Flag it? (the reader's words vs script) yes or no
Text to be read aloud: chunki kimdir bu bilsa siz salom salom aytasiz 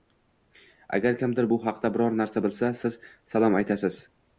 yes